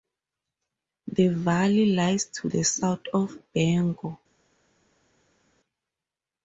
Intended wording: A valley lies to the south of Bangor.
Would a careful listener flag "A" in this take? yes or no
yes